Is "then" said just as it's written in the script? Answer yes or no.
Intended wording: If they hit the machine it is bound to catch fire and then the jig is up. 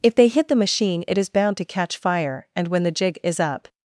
no